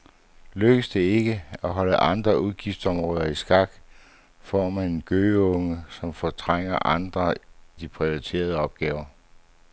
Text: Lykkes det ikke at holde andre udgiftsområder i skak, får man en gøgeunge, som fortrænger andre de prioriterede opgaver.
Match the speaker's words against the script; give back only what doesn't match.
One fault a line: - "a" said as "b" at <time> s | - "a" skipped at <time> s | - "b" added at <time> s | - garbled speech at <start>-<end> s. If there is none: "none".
none